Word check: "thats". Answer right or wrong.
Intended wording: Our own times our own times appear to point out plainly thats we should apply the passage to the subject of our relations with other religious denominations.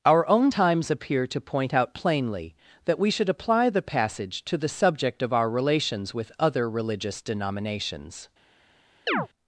wrong